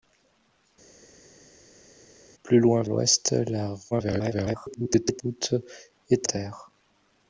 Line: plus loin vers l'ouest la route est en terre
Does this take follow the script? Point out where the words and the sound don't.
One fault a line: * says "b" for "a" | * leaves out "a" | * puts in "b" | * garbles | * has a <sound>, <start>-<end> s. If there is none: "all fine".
* leaves out "vers"
* garbles
* leaves out "en"